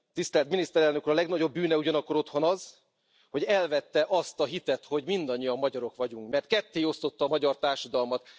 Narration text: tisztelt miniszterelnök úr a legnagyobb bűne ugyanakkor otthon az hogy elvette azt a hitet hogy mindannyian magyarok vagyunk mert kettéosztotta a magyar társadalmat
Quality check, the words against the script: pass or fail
pass